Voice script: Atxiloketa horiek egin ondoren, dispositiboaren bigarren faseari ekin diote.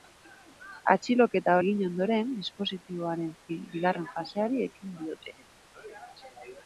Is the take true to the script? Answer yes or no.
no